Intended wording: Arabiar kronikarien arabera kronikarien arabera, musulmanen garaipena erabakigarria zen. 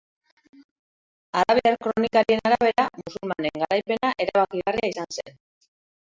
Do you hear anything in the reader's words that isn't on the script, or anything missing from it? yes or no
yes